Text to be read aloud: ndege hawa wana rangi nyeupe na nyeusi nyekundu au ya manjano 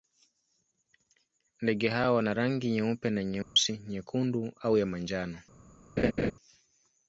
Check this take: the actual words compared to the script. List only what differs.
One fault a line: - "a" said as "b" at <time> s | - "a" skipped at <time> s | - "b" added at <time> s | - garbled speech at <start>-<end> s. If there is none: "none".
none